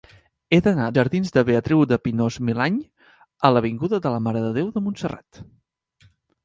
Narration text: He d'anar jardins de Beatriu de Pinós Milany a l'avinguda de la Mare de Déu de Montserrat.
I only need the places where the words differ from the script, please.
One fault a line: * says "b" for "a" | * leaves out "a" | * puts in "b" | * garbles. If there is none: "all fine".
all fine